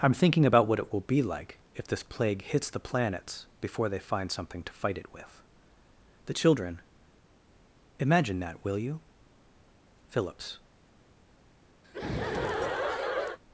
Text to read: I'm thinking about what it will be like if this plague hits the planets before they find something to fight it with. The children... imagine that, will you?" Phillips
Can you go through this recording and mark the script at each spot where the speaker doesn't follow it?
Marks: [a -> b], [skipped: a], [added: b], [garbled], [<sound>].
I'm thinking about what it will be like if this plague hits the planets before they find something to fight it with. The children... imagine that, will you?" Phillips [laugh]